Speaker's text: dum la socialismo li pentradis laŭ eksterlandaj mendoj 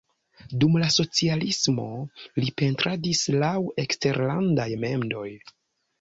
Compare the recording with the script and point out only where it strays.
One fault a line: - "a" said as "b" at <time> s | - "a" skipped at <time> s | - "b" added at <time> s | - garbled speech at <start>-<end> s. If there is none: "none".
none